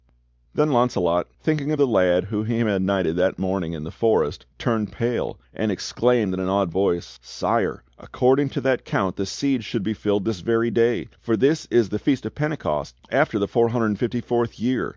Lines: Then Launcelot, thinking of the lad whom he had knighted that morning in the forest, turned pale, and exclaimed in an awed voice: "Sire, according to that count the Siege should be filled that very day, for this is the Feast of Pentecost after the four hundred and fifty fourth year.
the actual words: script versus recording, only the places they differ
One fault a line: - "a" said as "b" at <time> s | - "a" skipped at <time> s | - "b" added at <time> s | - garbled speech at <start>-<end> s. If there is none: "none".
- "that" said as "this" at 10.2 s